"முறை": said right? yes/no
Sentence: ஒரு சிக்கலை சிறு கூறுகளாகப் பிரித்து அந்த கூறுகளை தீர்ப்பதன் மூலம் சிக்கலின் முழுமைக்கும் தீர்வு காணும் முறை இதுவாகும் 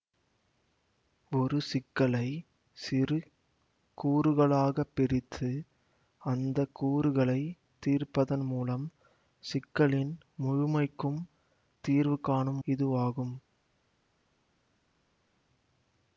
no